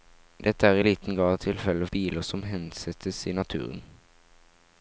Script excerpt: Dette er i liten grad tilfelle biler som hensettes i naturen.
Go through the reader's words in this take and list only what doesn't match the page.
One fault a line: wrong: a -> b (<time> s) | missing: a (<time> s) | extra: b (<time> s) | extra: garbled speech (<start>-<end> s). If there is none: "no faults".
no faults